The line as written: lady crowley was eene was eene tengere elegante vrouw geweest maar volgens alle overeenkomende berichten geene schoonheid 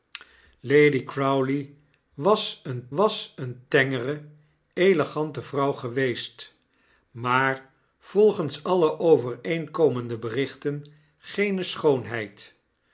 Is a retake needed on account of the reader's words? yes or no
no